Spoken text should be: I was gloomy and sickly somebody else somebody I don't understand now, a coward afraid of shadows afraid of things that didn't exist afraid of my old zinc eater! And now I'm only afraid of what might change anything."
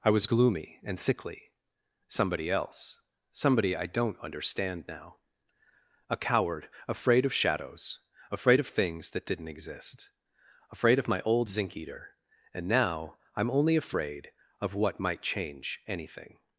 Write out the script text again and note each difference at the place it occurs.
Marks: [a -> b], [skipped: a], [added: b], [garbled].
I was gloomy and sickly somebody else somebody I don't understand now, a coward afraid of shadows afraid of things that didn't exist afraid of my old zinc eater! And now I'm only afraid of what might change anything."